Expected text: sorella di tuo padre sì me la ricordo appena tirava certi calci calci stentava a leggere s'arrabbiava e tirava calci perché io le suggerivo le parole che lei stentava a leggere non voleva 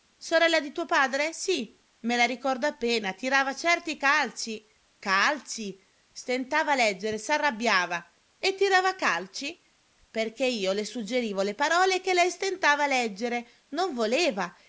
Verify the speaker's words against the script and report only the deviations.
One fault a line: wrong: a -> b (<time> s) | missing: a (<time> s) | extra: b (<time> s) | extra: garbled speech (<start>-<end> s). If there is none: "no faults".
no faults